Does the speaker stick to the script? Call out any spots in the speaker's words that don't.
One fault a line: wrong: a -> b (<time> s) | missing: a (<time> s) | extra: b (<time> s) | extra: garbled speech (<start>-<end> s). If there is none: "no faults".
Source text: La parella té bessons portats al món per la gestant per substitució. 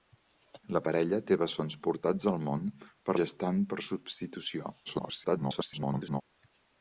missing: la (3.2 s)
extra: garbled speech (4.9-6.2 s)